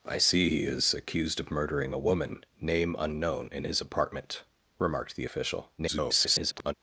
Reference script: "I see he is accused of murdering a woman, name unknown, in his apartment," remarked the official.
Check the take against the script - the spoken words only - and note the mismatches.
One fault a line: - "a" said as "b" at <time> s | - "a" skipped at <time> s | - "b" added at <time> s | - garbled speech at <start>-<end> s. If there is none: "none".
- garbled speech at 5.8-6.7 s